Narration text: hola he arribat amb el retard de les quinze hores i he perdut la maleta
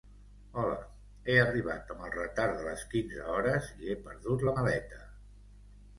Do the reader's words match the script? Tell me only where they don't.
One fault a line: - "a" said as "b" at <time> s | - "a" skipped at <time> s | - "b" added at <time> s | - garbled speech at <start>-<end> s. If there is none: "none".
none